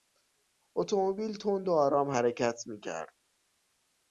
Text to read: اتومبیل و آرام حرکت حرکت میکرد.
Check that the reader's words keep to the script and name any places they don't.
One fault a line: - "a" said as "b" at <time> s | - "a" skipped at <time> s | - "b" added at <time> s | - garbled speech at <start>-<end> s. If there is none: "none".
- "تند" added at 1.4 s
- "حرکت" skipped at 2.6 s